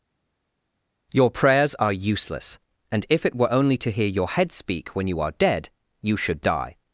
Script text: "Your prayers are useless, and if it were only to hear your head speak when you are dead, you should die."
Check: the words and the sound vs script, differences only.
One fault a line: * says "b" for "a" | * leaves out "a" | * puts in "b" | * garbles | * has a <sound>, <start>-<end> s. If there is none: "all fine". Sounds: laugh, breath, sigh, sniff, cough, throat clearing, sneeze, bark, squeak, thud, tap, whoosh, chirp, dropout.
all fine